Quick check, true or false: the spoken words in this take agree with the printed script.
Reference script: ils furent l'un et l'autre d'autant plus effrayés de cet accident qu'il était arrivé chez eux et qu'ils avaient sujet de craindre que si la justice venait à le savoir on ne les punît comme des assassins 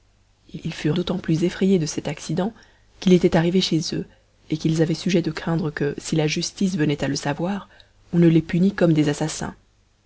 false